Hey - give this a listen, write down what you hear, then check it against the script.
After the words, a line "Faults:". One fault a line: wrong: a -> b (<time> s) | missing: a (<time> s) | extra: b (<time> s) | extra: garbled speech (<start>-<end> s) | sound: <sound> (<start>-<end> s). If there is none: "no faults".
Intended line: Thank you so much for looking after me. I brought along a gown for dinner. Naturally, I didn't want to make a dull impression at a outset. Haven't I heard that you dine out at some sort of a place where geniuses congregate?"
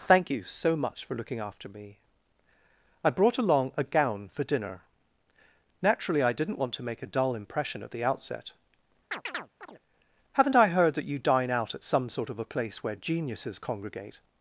Thank you so much for looking after me. I brought along a gown for dinner. Naturally, I didn't want to make a dull impression at the outset. Haven't I heard that you dine out at some sort of a place where geniuses congregate?"
Faults:
wrong: a -> the (7.9 s)
sound: chirp (9.1-9.8 s)